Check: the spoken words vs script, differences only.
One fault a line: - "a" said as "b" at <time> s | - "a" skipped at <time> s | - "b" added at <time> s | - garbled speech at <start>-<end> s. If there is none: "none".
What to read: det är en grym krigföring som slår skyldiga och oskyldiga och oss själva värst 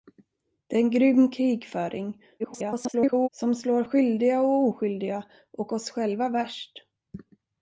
- garbled speech at 2.4-3.3 s